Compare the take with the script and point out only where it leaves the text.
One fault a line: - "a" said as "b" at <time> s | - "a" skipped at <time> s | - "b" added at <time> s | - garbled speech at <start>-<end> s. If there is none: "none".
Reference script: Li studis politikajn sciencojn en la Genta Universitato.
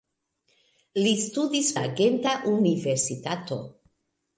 - "politikajn sciencojn en" skipped at 1.7 s